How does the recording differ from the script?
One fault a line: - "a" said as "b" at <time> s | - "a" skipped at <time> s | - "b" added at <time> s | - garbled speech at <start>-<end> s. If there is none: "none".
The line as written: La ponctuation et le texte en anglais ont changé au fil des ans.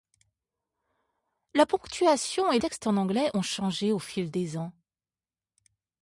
- "le" skipped at 2.6 s